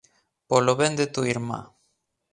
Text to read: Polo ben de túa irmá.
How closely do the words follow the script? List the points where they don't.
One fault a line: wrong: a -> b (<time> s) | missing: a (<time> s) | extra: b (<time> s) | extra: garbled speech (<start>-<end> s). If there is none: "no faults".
no faults